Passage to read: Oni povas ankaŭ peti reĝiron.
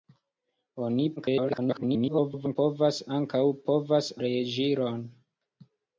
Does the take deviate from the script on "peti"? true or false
true